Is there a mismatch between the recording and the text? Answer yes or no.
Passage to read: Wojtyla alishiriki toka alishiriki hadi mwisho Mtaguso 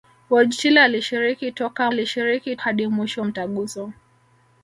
no